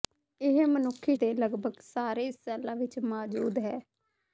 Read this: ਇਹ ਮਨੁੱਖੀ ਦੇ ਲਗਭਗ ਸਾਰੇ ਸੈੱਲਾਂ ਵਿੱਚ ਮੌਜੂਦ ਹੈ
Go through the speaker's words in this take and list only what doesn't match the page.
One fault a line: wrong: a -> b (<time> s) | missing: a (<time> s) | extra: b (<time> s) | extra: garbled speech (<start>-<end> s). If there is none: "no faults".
no faults